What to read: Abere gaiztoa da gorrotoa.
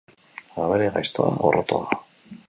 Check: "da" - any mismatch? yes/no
yes